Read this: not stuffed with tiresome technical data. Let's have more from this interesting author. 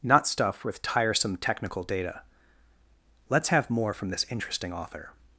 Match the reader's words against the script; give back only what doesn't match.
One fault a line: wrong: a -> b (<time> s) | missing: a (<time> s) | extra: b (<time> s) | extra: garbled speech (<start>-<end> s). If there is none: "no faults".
wrong: stuffed -> stuff (0.3 s)